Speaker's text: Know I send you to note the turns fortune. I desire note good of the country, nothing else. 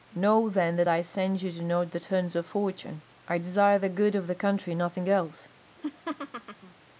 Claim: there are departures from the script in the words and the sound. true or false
true